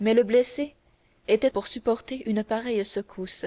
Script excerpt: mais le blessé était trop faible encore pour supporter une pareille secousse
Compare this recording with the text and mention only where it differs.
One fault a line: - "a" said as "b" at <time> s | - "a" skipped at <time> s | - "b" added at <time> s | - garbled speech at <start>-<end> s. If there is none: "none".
- "trop faible encore" skipped at 1.5 s